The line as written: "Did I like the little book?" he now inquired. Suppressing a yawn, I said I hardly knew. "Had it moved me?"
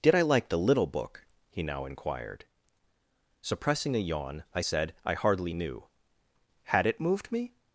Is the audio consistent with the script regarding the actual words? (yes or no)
yes